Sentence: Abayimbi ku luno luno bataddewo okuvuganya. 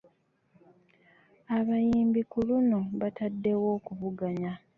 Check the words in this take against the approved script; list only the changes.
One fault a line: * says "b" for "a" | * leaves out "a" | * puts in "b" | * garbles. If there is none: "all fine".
* leaves out "luno"